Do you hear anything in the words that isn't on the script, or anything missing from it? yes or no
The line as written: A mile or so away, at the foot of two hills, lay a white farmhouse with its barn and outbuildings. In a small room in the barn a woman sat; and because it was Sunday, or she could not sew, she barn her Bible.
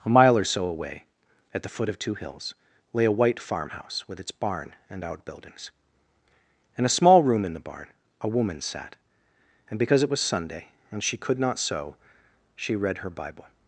yes